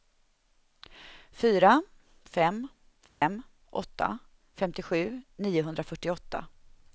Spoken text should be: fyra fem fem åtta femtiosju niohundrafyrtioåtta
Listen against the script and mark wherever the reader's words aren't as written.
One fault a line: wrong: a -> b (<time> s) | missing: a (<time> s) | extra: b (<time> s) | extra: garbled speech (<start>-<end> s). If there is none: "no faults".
no faults